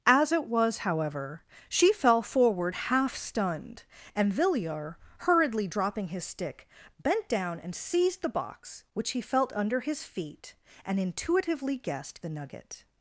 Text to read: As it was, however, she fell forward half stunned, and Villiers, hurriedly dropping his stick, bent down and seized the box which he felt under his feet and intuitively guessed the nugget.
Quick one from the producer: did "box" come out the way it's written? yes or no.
yes